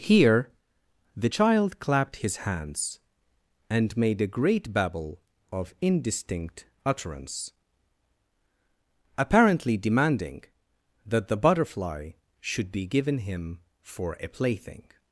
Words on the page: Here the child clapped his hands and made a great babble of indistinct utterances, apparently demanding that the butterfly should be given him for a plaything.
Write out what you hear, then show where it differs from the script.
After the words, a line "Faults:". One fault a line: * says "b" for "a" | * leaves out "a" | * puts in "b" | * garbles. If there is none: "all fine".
Here the child clapped his hands and made a great babble of indistinct utterance, apparently demanding that the butterfly should be given him for a plaything.
Faults:
* says "utterance" for "utterances"